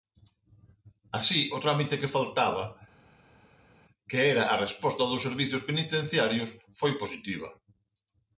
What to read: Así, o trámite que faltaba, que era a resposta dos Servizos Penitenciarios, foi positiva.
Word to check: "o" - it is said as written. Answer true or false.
true